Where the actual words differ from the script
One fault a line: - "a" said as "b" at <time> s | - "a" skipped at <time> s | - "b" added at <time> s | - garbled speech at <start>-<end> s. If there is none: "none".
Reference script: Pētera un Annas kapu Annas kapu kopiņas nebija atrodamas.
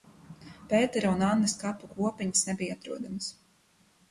- "Annas kapu" skipped at 1.9 s